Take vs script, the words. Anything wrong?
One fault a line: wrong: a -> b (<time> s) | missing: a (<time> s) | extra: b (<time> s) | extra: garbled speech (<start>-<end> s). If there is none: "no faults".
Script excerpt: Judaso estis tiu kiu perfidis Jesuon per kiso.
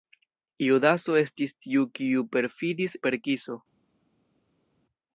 missing: Jesuon (3.0 s)